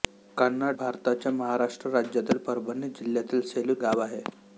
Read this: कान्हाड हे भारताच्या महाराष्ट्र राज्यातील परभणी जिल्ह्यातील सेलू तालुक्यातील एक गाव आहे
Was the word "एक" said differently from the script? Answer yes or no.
yes